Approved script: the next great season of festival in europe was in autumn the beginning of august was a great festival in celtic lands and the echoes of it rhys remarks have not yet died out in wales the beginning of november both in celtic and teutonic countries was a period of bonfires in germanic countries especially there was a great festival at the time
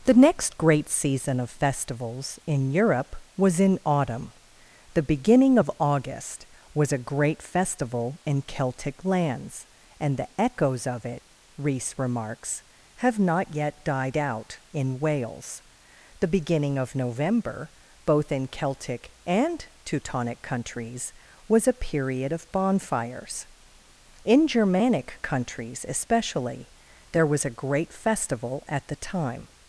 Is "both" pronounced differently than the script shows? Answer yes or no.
no